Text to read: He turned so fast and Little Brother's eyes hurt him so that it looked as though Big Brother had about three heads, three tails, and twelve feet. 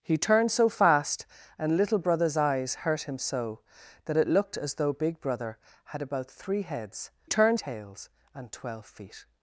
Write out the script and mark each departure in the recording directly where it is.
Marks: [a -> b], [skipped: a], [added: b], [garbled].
He turned so fast and Little Brother's eyes hurt him so that it looked as though Big Brother had about three heads, [three -> turned] tails, and twelve feet.